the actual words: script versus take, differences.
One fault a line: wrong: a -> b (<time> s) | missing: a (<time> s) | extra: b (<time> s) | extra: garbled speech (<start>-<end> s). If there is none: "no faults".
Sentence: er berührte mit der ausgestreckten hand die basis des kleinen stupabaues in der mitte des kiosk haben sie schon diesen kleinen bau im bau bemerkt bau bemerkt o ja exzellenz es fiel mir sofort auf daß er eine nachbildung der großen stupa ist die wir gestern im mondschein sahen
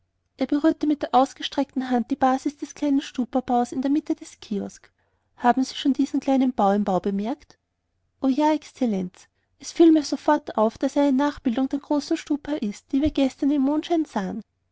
missing: bau bemerkt (7.6 s)